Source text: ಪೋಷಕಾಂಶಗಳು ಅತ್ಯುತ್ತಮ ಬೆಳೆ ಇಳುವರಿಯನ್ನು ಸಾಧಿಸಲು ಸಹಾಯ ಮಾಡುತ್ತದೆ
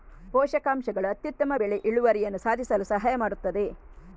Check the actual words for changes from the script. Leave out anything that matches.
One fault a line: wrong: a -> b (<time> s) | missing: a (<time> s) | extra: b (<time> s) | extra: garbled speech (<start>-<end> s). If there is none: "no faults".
no faults